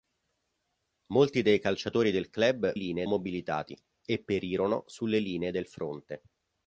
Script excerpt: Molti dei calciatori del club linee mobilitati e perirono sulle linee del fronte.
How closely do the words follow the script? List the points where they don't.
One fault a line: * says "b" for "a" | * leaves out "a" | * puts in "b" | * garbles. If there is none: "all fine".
all fine